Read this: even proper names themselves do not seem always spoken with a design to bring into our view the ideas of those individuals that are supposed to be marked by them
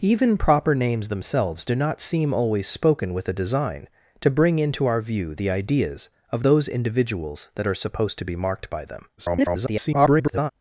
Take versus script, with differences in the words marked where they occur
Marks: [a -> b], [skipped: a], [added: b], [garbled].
even proper names themselves do not seem always spoken with a design to bring into our view the ideas of those individuals that are supposed to be marked by them [garbled]